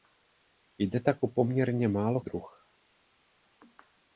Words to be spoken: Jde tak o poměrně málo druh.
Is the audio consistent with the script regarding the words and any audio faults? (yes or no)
yes